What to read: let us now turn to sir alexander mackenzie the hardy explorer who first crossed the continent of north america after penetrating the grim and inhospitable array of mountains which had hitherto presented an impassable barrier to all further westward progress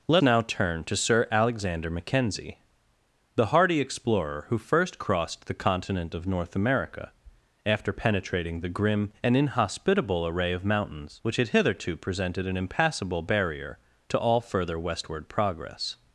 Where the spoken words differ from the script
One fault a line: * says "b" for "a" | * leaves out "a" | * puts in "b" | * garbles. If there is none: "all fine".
* leaves out "us"